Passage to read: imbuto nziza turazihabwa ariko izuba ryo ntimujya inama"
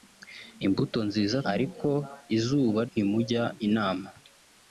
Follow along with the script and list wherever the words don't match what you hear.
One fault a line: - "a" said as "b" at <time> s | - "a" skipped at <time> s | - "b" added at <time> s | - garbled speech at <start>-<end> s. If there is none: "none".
- "turazihabwa" skipped at 1.4 s
- "ryo" skipped at 2.8 s